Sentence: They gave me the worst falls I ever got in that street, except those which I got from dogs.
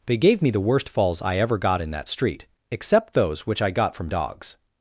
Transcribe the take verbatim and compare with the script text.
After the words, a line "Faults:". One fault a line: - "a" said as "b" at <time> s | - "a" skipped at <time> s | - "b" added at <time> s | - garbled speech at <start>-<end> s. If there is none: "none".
They gave me the worst falls I ever got in that street, except those which I got from dogs.
Faults:
none